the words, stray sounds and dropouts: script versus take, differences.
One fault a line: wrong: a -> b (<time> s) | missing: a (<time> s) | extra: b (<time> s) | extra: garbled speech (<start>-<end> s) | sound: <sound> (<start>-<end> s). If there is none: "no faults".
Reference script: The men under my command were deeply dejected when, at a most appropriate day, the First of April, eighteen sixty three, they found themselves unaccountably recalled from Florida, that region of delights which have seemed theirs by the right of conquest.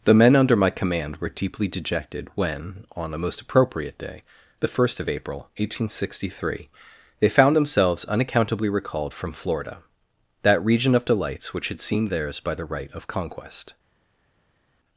wrong: at -> on (3.0 s)
wrong: have -> had (11.7 s)